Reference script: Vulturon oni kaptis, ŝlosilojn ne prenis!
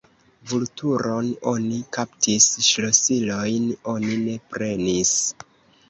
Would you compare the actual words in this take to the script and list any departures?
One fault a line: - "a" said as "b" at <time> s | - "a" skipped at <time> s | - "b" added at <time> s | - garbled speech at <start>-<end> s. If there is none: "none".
- "oni" added at 4.0 s